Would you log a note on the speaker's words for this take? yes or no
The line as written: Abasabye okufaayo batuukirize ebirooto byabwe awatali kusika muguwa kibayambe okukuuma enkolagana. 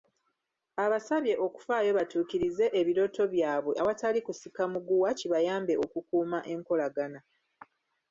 no